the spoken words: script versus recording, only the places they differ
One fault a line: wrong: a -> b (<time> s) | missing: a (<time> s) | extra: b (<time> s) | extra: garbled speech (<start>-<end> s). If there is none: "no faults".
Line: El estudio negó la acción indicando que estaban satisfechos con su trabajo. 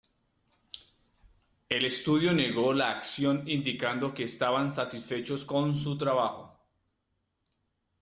no faults